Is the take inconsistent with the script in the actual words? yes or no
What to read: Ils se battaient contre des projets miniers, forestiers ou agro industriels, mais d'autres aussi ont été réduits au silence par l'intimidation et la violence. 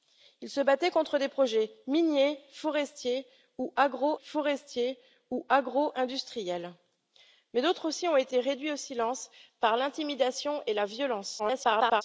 yes